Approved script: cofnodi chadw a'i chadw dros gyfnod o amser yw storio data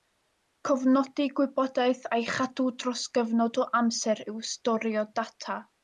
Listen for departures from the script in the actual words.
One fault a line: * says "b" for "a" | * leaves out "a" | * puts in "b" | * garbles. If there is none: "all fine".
* says "gwybodaeth" for "chadw"